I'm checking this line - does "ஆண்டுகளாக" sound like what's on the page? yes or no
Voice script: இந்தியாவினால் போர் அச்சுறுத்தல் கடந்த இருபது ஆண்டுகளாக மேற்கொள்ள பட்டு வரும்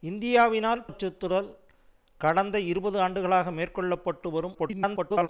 yes